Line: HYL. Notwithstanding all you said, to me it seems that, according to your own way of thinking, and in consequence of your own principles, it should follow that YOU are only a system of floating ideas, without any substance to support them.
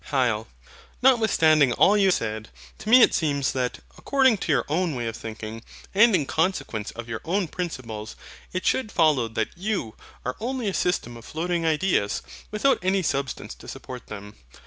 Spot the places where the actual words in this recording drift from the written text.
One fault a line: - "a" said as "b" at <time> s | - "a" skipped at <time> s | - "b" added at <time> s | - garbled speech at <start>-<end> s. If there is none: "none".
none